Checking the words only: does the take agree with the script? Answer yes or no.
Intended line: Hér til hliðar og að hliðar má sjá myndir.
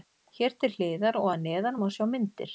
no